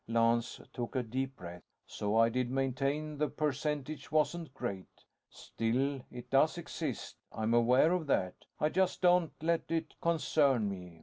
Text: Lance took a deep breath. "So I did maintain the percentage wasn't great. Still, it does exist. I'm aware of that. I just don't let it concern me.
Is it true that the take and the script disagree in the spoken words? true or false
false